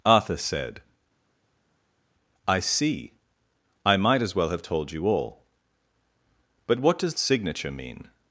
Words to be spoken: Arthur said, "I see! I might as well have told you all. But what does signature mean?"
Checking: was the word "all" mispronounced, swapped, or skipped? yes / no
no